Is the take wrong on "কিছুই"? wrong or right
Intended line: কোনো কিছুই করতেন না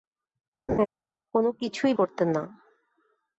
right